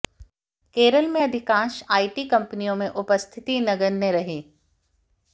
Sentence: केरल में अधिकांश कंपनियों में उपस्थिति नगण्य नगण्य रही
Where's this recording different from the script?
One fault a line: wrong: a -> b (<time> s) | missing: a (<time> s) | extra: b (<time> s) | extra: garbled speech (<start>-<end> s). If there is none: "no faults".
extra: आईटी (1.9 s)
missing: नगण्य (4.1 s)